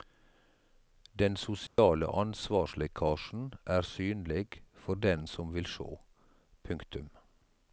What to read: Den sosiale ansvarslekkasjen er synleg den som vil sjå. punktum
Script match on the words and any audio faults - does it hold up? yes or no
no